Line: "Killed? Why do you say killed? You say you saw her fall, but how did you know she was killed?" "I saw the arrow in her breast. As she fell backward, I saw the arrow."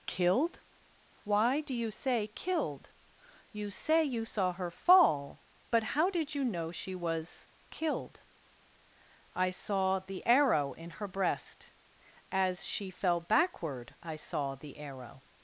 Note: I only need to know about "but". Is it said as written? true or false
true